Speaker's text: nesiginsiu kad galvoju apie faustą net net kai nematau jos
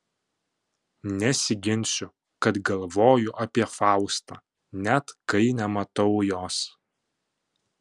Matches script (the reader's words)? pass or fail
fail